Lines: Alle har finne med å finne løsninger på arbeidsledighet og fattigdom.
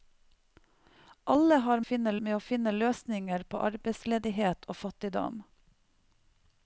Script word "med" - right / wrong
right